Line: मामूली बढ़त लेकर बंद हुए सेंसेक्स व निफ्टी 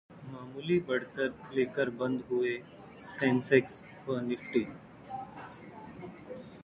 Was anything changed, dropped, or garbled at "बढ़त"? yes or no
no